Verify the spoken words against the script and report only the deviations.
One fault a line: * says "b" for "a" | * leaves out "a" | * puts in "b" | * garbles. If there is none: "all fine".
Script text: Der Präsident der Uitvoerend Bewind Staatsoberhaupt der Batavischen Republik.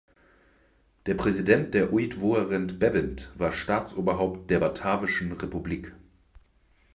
* puts in "war"